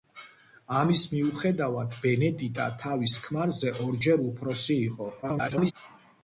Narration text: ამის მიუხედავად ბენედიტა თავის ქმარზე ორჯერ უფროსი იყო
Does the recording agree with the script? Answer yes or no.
no